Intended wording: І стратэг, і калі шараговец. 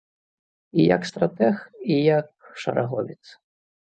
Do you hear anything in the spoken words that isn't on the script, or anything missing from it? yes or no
yes